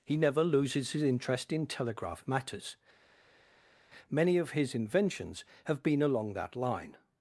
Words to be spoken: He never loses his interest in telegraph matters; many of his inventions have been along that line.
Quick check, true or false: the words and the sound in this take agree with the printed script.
true